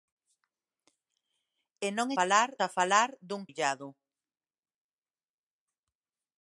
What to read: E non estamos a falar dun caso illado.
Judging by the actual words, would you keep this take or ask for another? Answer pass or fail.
fail